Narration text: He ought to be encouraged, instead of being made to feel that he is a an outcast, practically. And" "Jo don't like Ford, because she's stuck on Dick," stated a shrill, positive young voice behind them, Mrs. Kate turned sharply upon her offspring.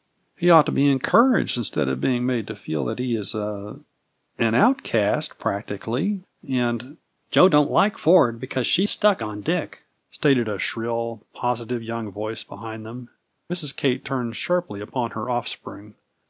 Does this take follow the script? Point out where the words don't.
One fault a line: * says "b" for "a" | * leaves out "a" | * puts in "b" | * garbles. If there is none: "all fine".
all fine